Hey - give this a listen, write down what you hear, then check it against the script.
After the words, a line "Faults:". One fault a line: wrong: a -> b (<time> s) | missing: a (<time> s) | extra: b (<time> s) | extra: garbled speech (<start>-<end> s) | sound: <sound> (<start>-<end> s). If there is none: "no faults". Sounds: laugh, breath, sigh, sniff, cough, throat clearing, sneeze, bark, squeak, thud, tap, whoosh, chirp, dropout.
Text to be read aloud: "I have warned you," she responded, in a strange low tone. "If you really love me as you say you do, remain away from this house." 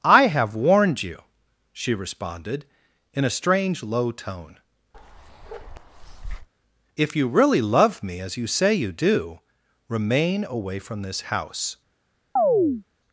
"I have warned you," she responded, in a strange low tone. "If you really love me as you say you do, remain away from this house."
Faults:
sound: bark (4.9-6.5 s)
sound: chirp (12.4-12.8 s)